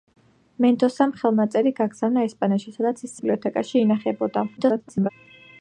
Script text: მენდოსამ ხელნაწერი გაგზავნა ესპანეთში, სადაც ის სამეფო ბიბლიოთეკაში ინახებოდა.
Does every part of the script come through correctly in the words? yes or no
no